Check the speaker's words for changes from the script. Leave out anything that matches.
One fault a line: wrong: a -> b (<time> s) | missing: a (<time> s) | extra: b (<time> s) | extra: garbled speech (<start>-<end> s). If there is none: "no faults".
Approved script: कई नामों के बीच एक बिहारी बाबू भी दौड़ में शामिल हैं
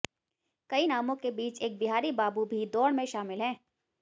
no faults